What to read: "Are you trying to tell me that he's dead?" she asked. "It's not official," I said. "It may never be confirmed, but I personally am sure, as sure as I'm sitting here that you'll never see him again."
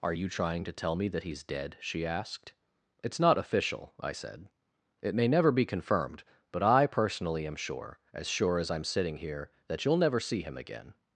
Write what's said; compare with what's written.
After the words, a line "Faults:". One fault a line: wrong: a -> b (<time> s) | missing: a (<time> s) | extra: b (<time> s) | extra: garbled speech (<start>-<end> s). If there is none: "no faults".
"Are you trying to tell me that he's dead?" she asked. "It's not official," I said. "It may never be confirmed, but I personally am sure, as sure as I'm sitting here that you'll never see him again."
Faults:
no faults